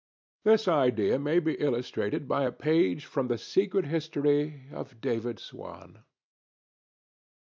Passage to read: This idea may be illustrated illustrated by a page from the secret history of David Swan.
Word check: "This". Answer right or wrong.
right